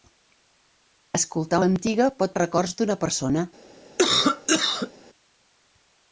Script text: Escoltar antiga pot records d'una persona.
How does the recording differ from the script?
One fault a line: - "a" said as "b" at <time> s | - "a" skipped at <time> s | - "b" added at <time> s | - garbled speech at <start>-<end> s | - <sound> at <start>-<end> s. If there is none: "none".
- cough at 4.0-4.9 s